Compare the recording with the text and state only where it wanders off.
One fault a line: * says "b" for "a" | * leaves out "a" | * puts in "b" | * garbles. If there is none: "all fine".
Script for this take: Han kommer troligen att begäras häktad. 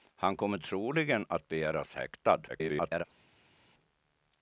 * garbles